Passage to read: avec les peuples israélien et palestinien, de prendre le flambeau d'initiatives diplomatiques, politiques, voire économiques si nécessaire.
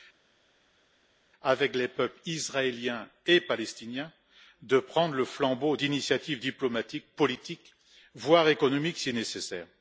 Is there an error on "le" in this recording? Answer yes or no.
no